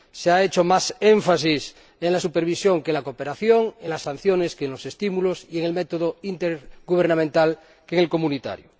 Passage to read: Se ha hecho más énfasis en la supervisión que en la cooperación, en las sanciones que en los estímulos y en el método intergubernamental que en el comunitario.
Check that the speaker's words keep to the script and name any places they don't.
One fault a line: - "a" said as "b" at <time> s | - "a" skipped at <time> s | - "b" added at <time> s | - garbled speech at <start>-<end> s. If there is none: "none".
none